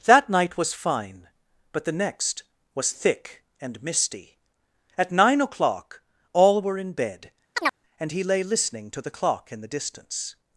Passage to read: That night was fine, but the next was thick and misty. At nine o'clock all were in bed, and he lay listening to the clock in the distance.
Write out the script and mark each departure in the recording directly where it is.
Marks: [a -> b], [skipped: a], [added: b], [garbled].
That night was fine, but the next was thick and misty. At nine o'clock all were in bed, and he lay listening to the clock in the distance.